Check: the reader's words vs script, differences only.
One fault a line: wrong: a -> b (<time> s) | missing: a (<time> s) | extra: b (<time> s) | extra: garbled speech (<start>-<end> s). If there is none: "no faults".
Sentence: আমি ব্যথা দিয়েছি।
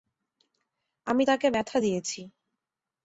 extra: তাকে (1.2 s)